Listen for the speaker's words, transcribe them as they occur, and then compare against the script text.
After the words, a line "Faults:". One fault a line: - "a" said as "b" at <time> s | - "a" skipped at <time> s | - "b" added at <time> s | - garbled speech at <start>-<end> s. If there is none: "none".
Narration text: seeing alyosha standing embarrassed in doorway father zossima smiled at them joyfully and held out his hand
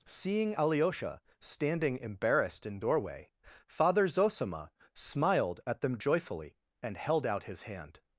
seeing alyosha standing embarrassed in doorway father zossima smiled at them joyfully and held out his hand
Faults:
none